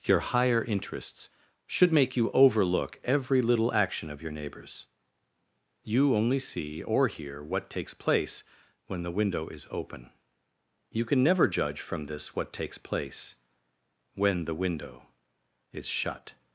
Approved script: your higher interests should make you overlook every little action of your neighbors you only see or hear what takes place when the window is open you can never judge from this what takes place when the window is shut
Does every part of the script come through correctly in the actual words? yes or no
yes